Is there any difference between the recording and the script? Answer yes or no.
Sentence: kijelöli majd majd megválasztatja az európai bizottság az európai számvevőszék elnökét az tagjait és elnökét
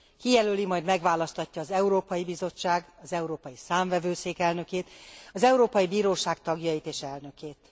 yes